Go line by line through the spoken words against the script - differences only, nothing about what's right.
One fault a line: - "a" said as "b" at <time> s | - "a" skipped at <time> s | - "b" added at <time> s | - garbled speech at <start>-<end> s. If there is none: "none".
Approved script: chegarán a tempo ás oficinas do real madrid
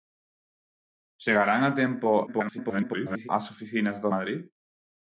- garbled speech at 2.3-3.3 s
- "real" skipped at 4.1 s